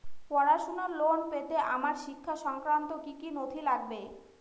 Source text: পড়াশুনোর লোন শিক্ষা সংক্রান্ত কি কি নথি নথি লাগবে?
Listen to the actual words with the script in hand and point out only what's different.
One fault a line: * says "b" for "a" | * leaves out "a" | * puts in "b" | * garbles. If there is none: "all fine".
* puts in "পেতে আমার"
* leaves out "নথি"